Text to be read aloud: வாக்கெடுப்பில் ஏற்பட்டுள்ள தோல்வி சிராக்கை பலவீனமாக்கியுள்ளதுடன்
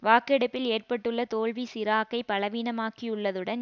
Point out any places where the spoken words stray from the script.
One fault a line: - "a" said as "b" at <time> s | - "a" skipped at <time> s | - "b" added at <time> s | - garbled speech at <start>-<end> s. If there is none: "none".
none